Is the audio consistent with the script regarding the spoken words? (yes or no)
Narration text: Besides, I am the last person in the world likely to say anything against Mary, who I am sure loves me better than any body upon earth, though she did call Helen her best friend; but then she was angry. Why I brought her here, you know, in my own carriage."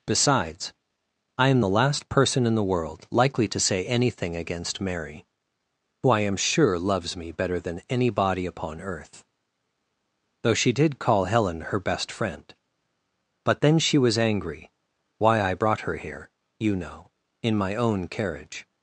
yes